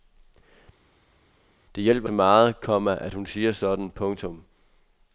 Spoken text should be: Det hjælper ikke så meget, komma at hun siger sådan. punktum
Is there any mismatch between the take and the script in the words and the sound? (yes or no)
yes